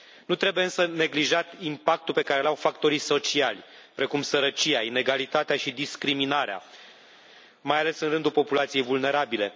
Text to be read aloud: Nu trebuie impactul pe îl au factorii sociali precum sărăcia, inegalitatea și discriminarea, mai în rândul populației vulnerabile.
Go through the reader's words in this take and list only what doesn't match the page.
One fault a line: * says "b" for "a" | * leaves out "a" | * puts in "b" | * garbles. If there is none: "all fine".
* puts in "însă neglijat"
* puts in "care"
* puts in "ales"